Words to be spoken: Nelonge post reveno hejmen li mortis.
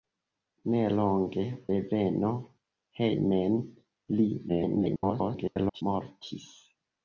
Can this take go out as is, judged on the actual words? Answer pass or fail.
fail